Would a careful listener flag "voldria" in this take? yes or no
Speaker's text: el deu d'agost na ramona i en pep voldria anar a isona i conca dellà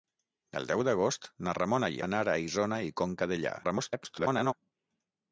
yes